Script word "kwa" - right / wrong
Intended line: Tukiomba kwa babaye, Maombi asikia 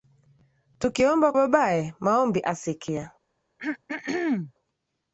wrong